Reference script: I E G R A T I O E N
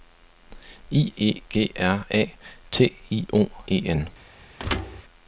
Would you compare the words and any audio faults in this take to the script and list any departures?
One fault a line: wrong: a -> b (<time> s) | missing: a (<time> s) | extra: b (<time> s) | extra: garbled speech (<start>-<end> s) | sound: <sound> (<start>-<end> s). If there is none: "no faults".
sound: thud (4.6-5.0 s)